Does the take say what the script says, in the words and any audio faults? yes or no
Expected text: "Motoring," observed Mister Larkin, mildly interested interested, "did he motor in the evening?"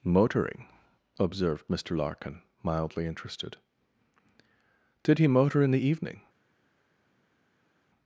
no